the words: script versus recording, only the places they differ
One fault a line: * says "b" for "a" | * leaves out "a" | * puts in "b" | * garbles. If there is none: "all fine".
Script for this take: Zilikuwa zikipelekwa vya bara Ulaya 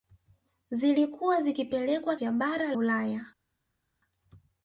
all fine